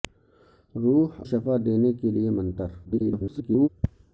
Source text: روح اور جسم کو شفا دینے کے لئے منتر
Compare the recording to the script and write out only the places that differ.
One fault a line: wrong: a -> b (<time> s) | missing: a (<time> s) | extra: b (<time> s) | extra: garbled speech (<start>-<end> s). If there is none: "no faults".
missing: اور جسم کو (1.2 s)
extra: garbled speech (2.8-3.7 s)